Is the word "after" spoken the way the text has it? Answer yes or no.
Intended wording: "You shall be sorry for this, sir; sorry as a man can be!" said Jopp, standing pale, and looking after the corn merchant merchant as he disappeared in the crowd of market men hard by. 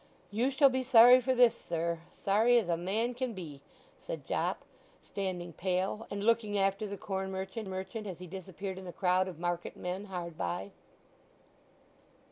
yes